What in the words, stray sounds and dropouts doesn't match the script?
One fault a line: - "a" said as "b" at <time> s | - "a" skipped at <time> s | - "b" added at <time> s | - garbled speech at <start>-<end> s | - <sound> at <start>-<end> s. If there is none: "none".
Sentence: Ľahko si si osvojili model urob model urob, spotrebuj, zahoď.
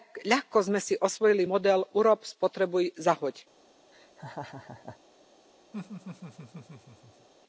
- "si" said as "sme" at 0.6 s
- "model urob" skipped at 2.2 s
- laugh at 3.9-5.0 s
- laugh at 5.7-7.3 s